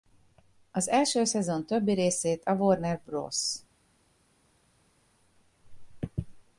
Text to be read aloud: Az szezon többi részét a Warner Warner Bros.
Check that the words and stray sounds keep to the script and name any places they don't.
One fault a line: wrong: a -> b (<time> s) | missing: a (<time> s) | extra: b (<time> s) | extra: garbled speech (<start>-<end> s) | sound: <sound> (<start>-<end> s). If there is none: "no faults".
extra: első (0.9 s)
missing: Warner (3.0 s)